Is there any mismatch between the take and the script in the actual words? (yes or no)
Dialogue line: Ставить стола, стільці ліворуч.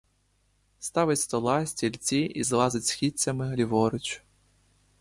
yes